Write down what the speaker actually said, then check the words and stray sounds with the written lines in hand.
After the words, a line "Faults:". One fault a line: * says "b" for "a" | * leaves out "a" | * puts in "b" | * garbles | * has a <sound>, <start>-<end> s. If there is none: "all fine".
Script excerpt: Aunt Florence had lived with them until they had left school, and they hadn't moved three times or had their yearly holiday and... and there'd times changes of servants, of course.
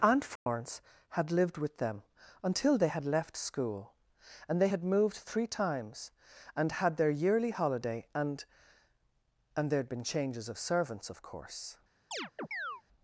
Aunt Florence had lived with them until they had left school, and they had moved three times and had their yearly holiday and... and there'd been changes of servants, of course.
Faults:
* has a dropout, 0.4-0.5 s
* says "had" for "hadn't"
* says "and" for "or"
* says "been" for "times"
* has a chirp, 12.1-12.8 s